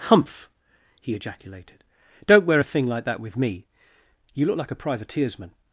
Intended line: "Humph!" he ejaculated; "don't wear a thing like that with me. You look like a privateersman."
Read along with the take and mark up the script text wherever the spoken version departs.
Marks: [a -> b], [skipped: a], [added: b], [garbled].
"Humph!" he ejaculated; "don't wear a thing like that with me. You look like a privateersman."